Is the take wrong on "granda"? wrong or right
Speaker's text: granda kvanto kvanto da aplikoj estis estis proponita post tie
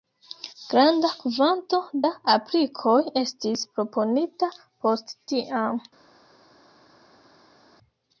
right